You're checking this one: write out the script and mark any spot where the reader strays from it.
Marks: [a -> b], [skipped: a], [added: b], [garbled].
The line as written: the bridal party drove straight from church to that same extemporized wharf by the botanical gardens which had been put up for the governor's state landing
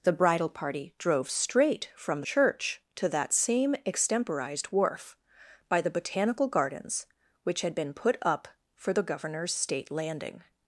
the bridal party drove straight from church to that same extemporized wharf by the botanical gardens which had been put up for the governor's state landing